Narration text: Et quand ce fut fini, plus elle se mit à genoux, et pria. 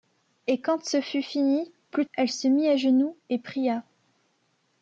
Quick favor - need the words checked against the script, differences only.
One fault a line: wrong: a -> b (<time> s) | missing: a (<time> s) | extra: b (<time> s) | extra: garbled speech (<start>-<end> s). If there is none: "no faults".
no faults